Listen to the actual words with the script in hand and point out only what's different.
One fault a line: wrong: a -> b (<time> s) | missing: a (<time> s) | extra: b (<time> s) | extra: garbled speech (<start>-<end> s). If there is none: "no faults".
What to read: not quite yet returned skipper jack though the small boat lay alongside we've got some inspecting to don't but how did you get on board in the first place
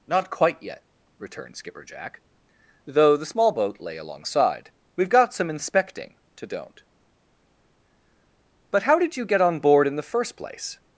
no faults